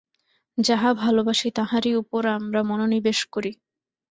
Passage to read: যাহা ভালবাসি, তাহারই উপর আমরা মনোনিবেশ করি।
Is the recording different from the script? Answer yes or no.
no